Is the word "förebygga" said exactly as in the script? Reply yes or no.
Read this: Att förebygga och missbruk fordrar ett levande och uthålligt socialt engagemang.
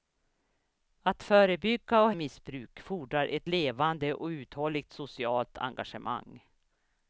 yes